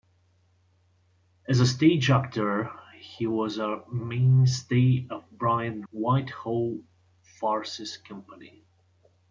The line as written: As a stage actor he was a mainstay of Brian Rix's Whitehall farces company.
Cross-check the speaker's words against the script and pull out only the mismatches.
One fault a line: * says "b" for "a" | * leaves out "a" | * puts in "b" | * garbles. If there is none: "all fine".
* leaves out "Rix's"